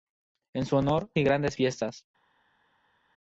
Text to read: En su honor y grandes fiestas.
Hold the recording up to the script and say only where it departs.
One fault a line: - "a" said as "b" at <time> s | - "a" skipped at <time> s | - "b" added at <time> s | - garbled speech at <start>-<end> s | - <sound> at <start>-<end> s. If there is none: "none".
none